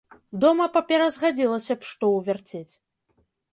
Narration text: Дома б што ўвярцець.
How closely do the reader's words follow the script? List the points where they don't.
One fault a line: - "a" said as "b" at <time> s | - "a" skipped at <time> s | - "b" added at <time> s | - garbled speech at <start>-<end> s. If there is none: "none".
- "папера згадзілася" added at 0.8 s